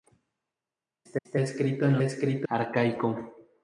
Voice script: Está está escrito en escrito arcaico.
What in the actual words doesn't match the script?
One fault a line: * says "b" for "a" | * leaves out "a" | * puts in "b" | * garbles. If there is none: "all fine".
all fine